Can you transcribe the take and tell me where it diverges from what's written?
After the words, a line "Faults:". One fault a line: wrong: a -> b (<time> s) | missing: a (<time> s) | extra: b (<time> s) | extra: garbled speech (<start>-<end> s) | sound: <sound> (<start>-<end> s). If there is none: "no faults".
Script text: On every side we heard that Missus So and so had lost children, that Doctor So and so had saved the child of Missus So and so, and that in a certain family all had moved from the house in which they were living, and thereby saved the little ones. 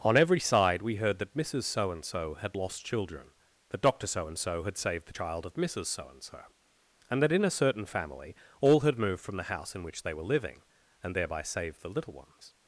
On every side we heard that Missus So and so had lost children, that Doctor So and so had saved the child of Missus So and so, and that in a certain family all had moved from the house in which they were living, and thereby saved the little ones.
Faults:
no faults